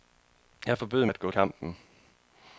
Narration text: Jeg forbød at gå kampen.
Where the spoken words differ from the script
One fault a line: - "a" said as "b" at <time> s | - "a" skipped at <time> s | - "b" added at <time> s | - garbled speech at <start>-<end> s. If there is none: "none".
none